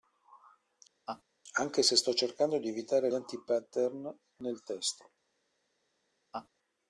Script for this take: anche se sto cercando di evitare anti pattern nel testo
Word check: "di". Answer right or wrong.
right